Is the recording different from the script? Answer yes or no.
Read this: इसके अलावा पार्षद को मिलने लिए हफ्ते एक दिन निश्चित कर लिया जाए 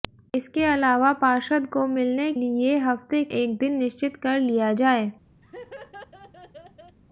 no